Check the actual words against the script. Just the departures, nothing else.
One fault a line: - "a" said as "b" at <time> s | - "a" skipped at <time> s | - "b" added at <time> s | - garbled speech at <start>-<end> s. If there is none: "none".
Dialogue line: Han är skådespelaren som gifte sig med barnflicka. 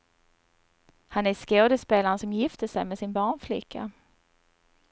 - "sin" added at 3.0 s